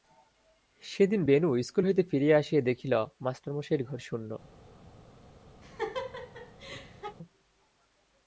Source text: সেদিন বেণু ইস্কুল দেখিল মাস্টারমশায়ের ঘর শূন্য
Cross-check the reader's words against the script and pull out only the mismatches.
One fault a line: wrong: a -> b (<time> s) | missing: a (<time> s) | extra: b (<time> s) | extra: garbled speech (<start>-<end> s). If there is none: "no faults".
extra: হইতে ফিরিয়া আসিয়া (1.8 s)